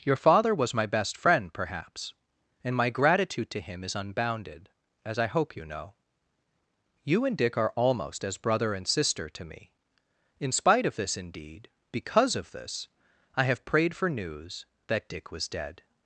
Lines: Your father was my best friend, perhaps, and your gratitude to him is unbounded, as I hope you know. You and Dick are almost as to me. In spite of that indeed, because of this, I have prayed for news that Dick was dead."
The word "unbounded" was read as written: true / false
true